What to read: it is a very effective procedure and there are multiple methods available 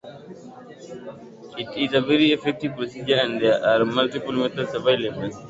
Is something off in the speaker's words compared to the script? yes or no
no